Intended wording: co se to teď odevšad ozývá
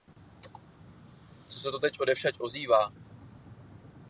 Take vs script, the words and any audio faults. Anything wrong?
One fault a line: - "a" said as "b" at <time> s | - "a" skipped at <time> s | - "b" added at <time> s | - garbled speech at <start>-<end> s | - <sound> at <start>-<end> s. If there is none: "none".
none